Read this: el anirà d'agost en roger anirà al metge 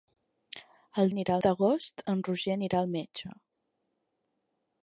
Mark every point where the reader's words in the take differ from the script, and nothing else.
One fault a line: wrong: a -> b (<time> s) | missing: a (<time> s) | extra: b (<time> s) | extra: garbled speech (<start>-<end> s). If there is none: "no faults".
no faults